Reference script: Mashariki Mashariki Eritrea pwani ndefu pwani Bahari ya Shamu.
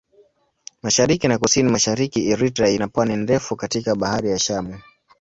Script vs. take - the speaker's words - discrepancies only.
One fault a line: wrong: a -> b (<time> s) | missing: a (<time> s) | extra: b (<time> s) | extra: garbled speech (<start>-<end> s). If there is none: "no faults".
extra: na Kusini (1.3 s)
extra: ina (2.7 s)
wrong: pwani -> katika (3.6 s)